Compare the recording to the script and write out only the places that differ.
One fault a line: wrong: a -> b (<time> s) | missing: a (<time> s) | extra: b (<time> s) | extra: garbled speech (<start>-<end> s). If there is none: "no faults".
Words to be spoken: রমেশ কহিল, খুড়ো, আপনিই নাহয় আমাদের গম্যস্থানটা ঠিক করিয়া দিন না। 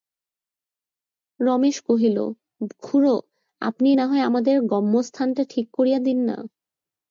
no faults